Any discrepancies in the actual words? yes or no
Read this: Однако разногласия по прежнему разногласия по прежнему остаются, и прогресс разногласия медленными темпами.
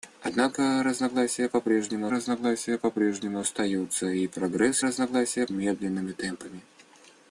no